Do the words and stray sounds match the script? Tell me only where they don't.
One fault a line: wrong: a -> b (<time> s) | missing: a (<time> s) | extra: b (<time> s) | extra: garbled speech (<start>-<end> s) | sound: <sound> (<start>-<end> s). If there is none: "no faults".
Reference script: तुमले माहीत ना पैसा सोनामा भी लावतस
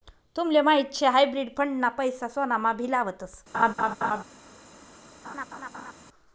extra: शे हायब्रिड फंड (0.9 s)
sound: laugh (3.5-4.2 s)
sound: laugh (5.2-5.9 s)